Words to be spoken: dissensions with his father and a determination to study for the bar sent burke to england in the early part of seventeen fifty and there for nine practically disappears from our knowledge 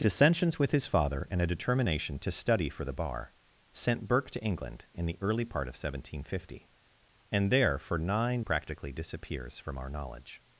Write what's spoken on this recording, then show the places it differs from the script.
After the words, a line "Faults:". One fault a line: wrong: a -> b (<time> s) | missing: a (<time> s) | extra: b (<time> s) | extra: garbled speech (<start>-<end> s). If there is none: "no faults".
dissensions with his father and a determination to study for the bar sent burke to england in the early part of seventeen fifty and there for nine practically disappears from our knowledge
Faults:
no faults